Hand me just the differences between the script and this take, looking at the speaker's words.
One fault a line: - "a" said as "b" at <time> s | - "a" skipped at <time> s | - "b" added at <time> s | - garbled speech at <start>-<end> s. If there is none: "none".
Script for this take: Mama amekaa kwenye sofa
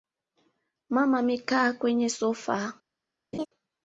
none